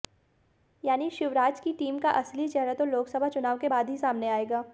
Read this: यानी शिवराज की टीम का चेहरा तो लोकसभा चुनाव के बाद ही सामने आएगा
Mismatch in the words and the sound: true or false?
true